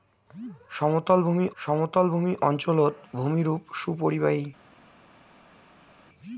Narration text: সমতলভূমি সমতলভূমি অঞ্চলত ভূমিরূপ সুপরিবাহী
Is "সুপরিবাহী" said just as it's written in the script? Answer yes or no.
yes